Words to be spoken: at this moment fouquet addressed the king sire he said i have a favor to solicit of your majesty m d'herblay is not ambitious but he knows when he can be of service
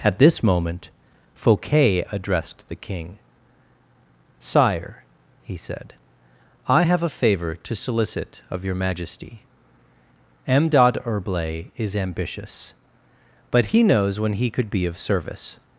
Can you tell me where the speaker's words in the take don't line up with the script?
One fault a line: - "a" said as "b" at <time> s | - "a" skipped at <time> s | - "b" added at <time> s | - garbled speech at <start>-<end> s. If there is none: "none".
- "not" skipped at 12.0 s
- "can" said as "could" at 14.5 s